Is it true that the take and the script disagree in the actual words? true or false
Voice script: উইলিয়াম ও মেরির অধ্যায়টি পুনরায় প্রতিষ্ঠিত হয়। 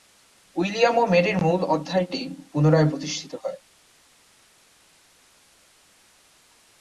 true